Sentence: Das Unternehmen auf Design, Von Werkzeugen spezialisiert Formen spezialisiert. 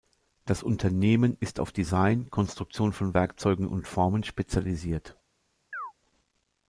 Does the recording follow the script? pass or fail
fail